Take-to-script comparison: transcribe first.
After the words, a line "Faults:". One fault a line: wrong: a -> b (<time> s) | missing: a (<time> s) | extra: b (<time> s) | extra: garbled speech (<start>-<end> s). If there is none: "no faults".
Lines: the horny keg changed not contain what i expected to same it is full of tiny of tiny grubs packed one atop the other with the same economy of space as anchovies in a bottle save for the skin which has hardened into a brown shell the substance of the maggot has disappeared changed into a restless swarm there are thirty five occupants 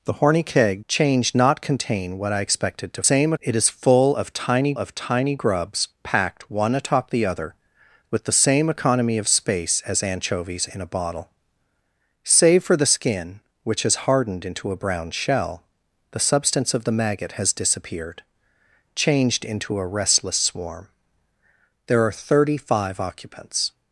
the horny keg changed not contain what i expected to same it is full of tiny of tiny grubs packed one atop the other with the same economy of space as anchovies in a bottle save for the skin which has hardened into a brown shell the substance of the maggot has disappeared changed into a restless swarm there are thirty five occupants
Faults:
no faults